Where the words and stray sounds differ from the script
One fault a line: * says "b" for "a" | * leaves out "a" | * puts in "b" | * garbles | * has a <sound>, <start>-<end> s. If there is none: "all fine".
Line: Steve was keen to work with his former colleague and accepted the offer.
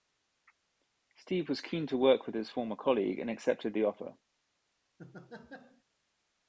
* has a laugh, 5.0-5.8 s